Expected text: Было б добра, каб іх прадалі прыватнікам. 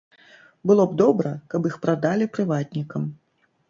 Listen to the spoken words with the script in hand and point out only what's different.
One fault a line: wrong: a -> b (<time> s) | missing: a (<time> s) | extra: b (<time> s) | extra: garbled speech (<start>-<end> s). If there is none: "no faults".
no faults